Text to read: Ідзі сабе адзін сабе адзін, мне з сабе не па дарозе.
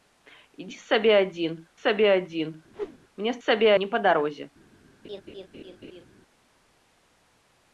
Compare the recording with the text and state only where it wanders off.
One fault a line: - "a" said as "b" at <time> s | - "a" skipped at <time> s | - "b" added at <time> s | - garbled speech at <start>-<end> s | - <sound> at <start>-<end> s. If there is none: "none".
- whoosh at 2.7-3.0 s
- laugh at 5.0-6.1 s